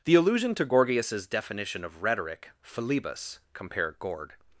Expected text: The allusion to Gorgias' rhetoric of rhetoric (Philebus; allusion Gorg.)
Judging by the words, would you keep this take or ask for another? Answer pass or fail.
fail